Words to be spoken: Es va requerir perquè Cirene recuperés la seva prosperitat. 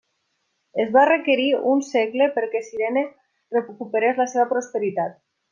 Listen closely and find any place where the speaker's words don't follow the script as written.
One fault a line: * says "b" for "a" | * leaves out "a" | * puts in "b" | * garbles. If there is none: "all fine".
* puts in "un segle"